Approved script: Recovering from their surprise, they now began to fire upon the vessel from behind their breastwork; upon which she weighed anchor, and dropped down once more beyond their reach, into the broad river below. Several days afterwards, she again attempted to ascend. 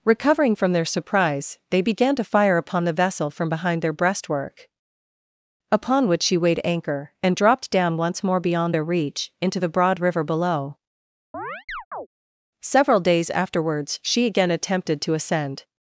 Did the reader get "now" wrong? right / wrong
wrong